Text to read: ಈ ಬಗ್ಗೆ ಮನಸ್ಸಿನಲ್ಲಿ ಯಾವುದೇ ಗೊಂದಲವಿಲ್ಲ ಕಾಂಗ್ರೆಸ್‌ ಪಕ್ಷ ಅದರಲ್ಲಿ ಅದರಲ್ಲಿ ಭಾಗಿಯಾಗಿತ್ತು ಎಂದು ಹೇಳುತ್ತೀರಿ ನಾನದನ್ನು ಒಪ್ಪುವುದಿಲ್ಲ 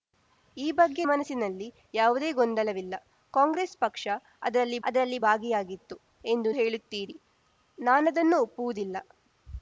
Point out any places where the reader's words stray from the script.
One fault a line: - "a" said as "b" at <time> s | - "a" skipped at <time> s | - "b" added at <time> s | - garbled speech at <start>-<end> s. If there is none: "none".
none